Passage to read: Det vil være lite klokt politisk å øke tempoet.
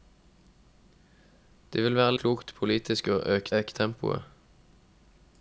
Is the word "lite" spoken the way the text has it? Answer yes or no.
no